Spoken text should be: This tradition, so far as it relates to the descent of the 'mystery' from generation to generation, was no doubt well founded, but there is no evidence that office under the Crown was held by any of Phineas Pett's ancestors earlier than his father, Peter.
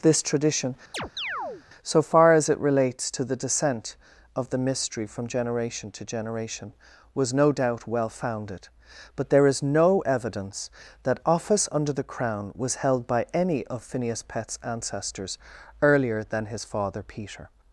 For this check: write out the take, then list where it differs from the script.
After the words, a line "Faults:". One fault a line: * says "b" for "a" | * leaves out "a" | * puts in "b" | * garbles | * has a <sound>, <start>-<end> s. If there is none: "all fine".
This tradition, so far as it relates to the descent of the 'mystery' from generation to generation, was no doubt well founded, but there is no evidence that office under the Crown was held by any of Phineas Pett's ancestors earlier than his father, Peter.
Faults:
* has a chirp, 0.9-1.6 s